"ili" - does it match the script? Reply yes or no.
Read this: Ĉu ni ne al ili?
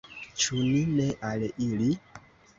yes